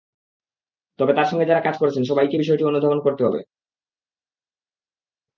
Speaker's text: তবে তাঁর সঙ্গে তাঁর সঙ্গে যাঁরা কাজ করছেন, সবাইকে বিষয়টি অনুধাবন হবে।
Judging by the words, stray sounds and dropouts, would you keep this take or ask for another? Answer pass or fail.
fail